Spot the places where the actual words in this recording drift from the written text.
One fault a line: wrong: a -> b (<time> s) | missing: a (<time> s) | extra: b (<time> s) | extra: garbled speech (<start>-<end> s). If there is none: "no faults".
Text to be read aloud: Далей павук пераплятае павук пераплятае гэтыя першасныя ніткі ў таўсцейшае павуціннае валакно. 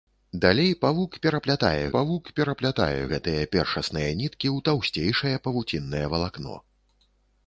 no faults